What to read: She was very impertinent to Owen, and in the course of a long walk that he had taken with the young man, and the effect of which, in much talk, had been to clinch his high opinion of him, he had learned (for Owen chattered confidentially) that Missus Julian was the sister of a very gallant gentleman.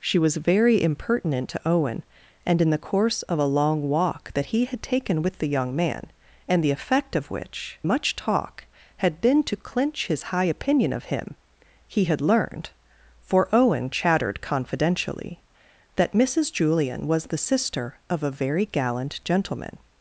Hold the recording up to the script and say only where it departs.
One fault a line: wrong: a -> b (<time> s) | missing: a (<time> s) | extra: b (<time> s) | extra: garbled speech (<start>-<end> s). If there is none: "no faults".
missing: in (7.8 s)